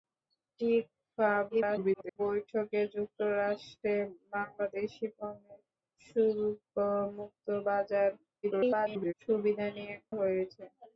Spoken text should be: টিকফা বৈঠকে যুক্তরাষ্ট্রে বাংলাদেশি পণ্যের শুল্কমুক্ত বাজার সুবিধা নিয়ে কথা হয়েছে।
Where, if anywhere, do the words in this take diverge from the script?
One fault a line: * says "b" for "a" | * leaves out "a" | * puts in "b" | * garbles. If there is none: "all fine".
* garbles
* garbles
* leaves out "কথা"